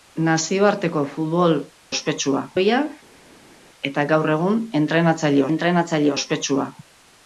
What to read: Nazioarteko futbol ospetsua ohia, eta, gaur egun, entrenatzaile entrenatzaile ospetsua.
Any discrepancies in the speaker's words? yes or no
no